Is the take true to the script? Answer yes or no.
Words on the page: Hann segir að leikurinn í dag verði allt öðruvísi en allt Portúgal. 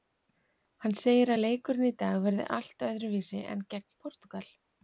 no